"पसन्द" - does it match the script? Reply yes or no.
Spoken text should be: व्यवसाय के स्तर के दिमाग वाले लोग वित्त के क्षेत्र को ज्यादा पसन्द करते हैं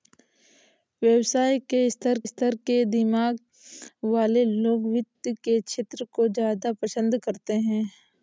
yes